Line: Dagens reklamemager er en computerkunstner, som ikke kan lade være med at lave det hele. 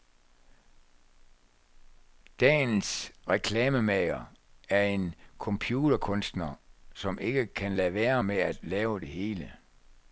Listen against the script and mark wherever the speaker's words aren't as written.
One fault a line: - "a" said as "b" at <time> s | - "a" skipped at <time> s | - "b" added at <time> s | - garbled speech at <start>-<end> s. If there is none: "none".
none